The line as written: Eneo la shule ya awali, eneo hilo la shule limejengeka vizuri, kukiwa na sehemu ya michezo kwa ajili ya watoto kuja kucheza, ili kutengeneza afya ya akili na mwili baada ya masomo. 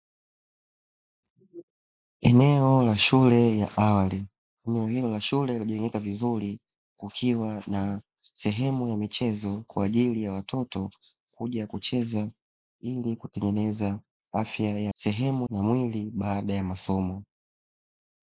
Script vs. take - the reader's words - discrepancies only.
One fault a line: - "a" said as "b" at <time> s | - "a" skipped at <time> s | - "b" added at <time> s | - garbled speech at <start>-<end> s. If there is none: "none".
- "akili" said as "sehemu" at 14.9 s